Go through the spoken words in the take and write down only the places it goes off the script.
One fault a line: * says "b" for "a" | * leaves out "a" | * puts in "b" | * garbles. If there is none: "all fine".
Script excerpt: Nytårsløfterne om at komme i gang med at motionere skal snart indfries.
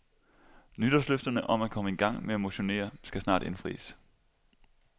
all fine